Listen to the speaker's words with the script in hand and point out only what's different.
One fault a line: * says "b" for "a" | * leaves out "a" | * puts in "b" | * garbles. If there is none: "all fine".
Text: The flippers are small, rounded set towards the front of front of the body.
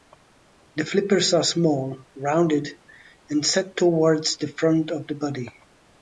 * puts in "and"
* leaves out "front of"